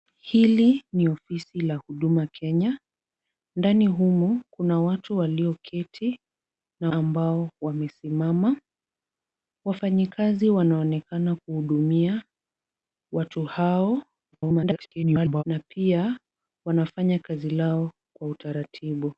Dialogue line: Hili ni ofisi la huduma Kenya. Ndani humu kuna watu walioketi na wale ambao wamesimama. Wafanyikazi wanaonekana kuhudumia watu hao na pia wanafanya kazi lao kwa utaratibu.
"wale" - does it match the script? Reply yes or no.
no